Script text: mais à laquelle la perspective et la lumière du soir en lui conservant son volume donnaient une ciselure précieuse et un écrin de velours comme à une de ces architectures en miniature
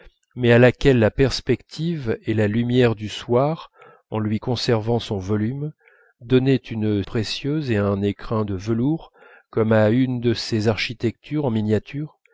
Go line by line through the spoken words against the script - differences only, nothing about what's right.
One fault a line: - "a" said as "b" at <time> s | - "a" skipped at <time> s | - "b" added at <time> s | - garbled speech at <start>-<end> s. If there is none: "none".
- "ciselure" skipped at 7.0 s